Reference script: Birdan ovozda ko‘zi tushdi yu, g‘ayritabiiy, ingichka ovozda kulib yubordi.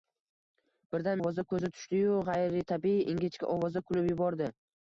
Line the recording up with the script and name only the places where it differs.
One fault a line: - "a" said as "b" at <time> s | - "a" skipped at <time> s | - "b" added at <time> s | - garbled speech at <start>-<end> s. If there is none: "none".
none